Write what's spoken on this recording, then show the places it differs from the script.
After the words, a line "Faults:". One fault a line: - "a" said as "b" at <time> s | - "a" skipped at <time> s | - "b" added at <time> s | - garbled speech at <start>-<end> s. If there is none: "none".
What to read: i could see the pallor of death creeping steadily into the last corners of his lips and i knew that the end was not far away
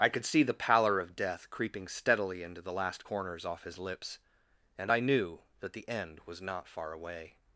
i could see the pallor of death creeping steadily into the last corners off his lips and i knew that the end was not far away
Faults:
- "of" said as "off" at 3.4 s